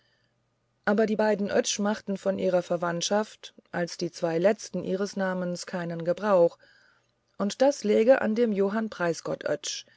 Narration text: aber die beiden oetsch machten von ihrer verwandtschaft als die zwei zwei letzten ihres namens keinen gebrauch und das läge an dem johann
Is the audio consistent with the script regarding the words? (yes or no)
no